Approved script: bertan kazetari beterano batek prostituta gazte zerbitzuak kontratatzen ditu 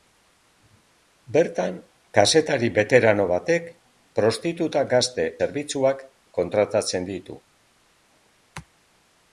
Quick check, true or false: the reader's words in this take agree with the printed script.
true